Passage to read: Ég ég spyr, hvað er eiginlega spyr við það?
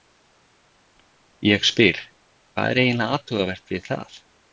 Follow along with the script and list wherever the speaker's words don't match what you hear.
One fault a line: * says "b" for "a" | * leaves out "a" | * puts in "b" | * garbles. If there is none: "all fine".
* leaves out "ég"
* says "athugavert" for "spyr"